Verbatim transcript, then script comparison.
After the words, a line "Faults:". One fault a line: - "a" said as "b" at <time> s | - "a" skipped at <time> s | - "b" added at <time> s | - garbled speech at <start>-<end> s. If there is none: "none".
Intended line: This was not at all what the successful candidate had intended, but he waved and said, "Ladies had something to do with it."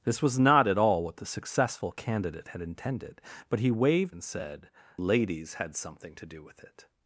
This was not at all what the successful candidate had intended, but he waved and said, "Ladies had something to do with it."
Faults:
none